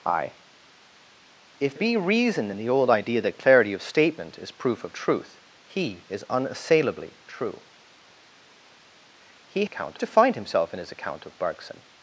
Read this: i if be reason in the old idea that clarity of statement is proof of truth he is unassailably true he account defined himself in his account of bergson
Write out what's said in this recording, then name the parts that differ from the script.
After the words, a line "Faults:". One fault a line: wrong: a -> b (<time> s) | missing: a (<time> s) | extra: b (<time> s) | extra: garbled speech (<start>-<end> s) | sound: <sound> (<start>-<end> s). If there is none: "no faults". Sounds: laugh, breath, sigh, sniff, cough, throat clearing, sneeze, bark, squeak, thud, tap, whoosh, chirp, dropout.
i if be reason in the old idea that clarity of statement is proof of truth he is unassailably true he account defined himself in his account of bergson
Faults:
no faults